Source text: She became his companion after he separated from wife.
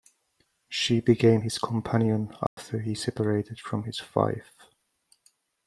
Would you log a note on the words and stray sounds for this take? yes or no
yes